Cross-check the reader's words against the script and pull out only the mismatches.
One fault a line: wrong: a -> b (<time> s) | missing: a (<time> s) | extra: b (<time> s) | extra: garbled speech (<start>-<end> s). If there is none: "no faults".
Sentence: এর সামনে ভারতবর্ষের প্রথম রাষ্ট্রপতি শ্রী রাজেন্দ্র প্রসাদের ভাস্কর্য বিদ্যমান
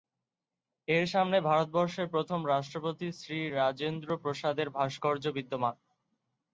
no faults